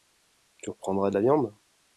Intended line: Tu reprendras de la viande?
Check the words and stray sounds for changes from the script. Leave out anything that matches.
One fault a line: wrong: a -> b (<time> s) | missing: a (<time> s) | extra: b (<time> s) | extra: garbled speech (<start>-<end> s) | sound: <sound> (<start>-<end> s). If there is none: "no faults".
no faults